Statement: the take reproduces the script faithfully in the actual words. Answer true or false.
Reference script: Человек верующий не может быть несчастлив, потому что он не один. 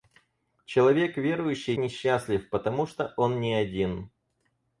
false